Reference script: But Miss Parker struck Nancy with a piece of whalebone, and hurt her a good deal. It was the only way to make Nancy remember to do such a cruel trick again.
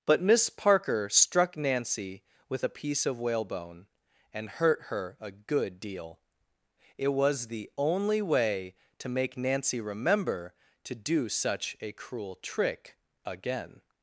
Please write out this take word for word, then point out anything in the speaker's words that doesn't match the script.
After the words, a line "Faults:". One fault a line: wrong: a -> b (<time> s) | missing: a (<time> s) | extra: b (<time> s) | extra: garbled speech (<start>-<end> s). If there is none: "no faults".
But Miss Parker struck Nancy with a piece of whalebone, and hurt her a good deal. It was the only way to make Nancy remember to do such a cruel trick again.
Faults:
no faults